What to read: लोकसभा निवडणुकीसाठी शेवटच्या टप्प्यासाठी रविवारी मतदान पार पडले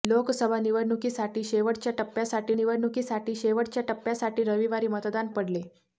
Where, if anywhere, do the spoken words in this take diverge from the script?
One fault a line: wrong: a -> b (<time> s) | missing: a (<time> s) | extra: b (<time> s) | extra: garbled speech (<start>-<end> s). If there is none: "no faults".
extra: निवडणुकीसाठी शेवटच्या टप्प्यासाठी (2.5 s)
missing: पार (5.3 s)